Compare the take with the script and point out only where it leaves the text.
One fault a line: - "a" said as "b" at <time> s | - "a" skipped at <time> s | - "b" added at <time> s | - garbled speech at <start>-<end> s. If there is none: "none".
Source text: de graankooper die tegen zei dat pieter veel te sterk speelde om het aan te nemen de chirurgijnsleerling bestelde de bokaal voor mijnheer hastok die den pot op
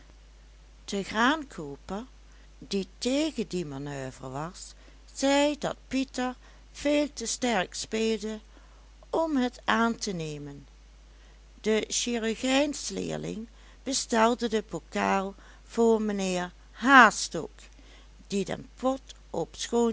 - "die manoeuvre was" added at 3.5 s